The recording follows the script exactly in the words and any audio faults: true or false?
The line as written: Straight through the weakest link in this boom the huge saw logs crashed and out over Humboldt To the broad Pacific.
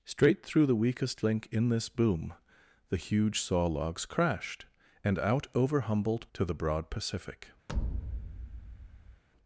false